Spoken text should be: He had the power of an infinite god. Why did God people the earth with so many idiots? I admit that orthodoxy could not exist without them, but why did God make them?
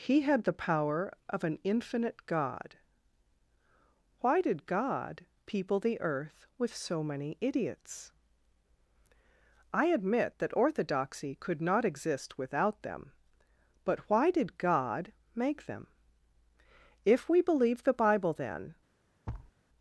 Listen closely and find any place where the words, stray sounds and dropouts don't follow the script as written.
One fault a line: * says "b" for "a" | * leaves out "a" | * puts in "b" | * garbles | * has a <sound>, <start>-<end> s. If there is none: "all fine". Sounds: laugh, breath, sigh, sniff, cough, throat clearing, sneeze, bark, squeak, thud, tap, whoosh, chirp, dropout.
* puts in "If we believe the bible then"
* has a thud, 19.3-19.5 s